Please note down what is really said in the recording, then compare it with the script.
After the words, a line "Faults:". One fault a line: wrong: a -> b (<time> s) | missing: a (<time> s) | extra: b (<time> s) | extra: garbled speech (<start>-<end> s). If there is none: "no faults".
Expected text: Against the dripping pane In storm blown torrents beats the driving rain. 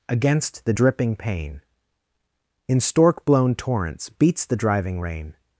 Against the dripping pane In stork blown torrents beats the driving rain.
Faults:
wrong: storm -> stork (2.8 s)